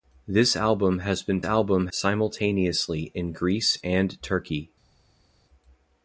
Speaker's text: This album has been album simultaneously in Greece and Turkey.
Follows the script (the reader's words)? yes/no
yes